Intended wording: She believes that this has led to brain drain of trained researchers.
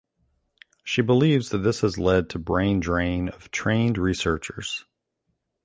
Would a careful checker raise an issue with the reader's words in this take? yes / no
no